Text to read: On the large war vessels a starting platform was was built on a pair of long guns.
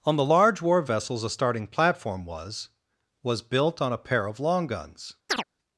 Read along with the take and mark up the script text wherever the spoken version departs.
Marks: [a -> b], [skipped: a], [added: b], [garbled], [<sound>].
On the large war vessels a starting platform was was built on a pair of long guns. [chirp]